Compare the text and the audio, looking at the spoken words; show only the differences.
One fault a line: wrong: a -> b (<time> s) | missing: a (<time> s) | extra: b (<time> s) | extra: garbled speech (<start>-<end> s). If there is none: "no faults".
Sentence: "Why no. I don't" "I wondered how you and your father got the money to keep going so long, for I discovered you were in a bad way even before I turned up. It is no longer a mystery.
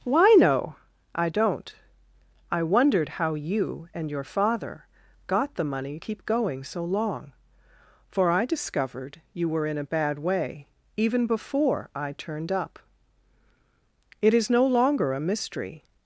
missing: to (6.0 s)